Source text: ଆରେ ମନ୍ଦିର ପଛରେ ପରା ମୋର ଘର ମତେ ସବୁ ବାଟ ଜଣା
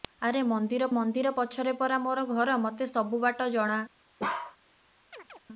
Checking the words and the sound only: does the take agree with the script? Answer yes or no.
no